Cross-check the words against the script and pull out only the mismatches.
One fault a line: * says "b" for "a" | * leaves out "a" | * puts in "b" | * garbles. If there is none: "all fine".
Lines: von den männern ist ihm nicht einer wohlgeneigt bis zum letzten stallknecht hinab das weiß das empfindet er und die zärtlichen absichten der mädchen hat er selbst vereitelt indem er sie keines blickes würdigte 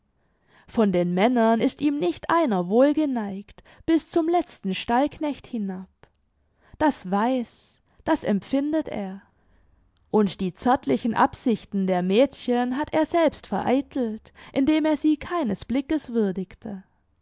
all fine